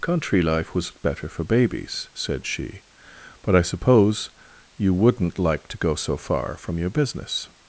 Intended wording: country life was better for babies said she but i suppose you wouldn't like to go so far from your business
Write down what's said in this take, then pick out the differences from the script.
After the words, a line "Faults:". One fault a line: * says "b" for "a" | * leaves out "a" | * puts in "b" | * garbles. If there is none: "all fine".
country life was better for babies said she but i suppose you wouldn't like to go so far from your business
Faults:
all fine